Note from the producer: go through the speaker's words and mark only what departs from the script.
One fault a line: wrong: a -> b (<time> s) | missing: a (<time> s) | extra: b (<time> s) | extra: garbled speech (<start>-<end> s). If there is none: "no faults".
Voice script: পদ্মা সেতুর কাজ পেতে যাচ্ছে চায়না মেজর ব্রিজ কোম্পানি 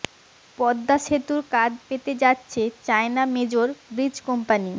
no faults